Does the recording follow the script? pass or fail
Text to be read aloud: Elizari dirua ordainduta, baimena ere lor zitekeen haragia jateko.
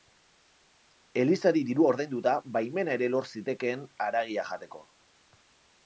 pass